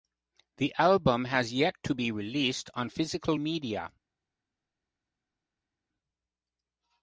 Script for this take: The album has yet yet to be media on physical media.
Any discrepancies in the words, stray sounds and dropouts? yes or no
yes